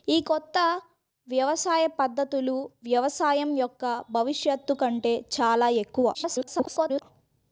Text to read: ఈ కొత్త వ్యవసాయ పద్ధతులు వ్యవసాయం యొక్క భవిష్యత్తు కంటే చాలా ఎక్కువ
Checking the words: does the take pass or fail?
fail